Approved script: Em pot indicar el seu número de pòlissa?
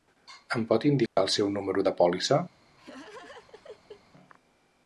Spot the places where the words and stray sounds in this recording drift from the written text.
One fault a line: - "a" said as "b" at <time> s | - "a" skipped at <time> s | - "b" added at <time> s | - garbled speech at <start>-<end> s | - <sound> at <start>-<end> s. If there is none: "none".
- dropout at 1.1-1.2 s
- laugh at 2.8-4.0 s